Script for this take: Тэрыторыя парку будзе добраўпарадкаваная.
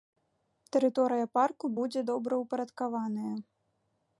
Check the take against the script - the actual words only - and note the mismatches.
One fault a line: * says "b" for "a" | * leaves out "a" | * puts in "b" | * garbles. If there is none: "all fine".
all fine